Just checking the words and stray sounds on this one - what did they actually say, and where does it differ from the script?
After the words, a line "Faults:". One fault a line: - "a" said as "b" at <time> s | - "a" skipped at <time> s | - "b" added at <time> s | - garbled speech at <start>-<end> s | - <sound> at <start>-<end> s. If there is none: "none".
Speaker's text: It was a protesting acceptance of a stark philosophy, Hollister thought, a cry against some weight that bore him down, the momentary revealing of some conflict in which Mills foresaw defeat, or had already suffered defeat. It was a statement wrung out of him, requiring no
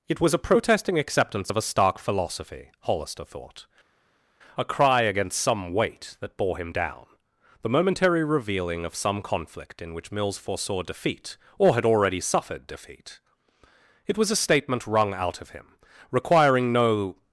It was a protesting acceptance of a stark philosophy, Hollister thought, a cry against some weight that bore him down, the momentary revealing of some conflict in which Mills foresaw defeat, or had already suffered defeat. It was a statement wrung out of him, requiring no
Faults:
none